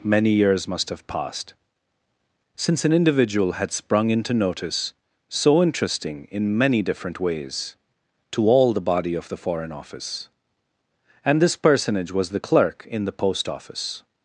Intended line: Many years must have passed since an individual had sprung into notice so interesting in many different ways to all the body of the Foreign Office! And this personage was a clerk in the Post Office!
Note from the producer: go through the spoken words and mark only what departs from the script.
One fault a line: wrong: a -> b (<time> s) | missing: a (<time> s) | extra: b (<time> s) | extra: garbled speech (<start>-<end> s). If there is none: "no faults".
wrong: a -> the (12.3 s)